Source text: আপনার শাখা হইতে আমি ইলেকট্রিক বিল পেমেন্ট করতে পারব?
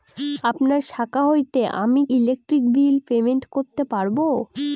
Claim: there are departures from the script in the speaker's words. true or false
false